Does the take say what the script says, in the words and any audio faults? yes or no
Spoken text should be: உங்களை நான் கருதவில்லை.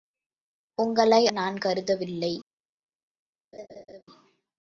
no